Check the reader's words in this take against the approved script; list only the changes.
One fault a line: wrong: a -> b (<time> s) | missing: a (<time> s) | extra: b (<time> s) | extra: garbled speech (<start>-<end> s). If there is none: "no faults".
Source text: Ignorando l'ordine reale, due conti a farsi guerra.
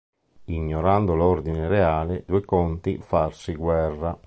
no faults